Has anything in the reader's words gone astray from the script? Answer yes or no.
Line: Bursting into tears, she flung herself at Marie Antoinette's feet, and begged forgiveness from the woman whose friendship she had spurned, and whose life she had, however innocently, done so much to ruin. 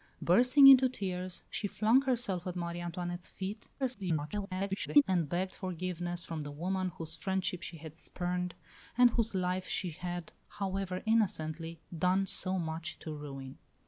yes